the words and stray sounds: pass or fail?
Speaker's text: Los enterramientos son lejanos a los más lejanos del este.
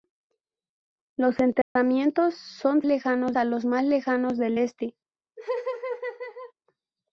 fail